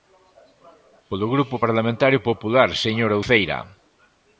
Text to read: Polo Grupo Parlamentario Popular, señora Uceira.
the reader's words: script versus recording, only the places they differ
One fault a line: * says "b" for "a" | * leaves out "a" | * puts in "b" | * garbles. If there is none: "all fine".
all fine